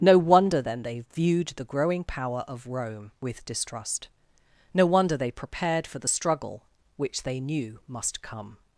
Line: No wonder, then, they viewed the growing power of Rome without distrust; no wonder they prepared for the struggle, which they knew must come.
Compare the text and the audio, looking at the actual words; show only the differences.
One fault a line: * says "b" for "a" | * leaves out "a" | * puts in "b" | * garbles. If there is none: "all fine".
* says "with" for "without"